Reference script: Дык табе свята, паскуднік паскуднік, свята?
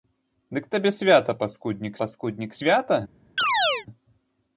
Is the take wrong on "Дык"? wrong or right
right